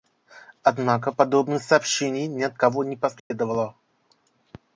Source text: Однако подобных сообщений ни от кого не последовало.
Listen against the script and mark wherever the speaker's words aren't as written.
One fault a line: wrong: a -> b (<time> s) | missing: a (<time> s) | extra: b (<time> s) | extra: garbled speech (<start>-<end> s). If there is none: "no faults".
no faults